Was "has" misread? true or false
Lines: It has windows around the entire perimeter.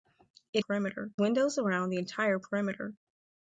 true